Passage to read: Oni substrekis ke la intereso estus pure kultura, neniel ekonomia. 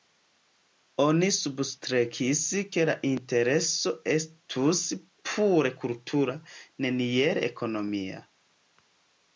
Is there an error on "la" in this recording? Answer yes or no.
no